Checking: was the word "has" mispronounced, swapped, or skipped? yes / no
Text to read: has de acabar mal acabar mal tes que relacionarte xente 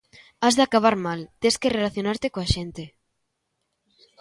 no